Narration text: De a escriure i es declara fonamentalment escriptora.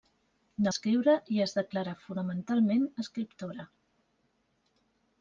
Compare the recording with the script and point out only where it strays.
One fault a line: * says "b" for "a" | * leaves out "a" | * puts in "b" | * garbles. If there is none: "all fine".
all fine